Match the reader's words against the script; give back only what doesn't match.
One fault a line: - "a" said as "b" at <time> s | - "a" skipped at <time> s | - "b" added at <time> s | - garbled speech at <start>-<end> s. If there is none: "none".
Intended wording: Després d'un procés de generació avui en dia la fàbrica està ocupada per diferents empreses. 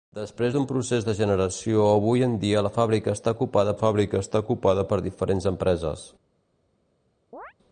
- "fàbrica està ocupada" added at 3.8 s